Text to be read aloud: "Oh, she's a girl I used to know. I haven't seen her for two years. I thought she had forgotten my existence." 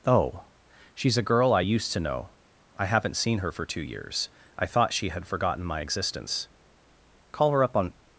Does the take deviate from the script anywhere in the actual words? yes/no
yes